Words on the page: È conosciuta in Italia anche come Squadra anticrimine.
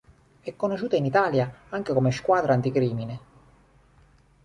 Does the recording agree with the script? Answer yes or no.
yes